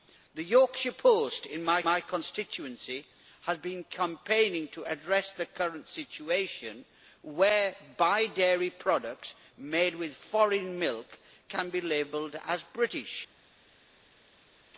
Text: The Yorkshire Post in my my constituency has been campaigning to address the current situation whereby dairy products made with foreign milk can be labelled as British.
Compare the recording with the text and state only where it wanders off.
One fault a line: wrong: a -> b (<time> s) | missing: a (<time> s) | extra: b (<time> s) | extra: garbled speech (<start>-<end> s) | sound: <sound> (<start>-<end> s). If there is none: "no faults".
no faults